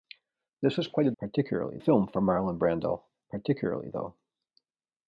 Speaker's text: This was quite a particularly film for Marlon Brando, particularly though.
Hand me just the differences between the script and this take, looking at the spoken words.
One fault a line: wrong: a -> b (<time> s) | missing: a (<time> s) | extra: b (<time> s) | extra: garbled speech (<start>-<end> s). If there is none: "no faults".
no faults